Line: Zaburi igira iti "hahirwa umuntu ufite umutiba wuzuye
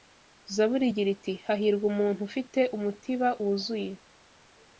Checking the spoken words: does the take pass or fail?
pass